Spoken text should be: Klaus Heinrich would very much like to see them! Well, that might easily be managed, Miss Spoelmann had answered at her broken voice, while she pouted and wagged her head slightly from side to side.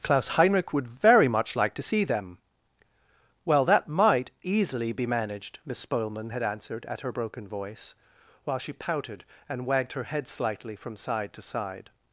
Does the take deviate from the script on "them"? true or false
false